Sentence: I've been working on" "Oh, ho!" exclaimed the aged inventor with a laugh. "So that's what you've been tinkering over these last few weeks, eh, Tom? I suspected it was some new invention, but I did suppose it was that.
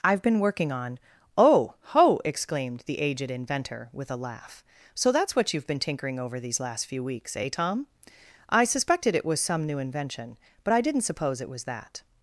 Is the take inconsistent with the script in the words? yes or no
yes